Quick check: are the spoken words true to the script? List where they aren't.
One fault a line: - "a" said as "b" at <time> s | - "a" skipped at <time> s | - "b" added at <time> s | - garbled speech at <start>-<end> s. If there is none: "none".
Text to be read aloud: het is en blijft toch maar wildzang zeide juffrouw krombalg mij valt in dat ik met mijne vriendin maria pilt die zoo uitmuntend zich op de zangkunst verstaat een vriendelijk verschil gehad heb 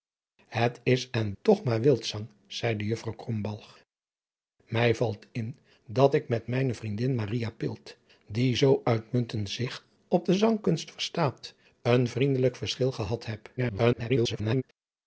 - "blijft" skipped at 1.3 s
- garbled speech at 13.6-14.6 s